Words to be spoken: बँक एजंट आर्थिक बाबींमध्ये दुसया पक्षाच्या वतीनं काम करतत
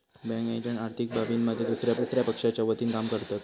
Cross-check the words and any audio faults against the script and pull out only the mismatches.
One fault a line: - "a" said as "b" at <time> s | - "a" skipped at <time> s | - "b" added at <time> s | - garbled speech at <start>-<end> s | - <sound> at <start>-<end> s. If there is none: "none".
- "दुसया" added at 2.0 s